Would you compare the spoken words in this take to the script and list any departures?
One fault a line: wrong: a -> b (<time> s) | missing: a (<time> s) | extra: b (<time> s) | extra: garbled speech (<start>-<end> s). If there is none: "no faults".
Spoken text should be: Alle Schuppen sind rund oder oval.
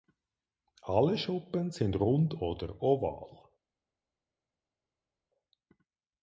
no faults